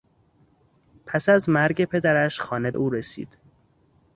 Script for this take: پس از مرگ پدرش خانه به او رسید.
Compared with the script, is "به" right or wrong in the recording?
wrong